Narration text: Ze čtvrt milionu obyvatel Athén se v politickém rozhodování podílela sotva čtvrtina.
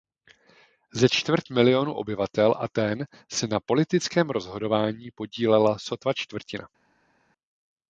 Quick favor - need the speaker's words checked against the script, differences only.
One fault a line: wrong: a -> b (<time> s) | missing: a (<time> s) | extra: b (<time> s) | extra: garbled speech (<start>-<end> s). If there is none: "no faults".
wrong: v -> na (3.5 s)